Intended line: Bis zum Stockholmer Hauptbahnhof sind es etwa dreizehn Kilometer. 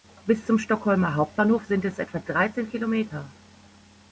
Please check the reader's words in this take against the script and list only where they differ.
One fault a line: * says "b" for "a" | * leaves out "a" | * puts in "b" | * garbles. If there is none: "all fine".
all fine